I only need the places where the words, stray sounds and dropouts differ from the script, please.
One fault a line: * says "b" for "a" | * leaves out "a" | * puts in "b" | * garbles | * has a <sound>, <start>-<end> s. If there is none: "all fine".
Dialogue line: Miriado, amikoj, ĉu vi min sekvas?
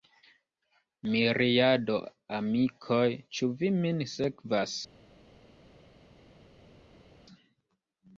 all fine